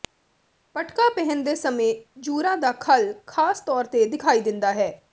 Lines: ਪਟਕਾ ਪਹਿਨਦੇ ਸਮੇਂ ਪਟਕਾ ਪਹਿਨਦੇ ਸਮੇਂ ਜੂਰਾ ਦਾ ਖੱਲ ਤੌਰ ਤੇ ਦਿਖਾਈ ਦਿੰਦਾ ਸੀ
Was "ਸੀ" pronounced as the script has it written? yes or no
no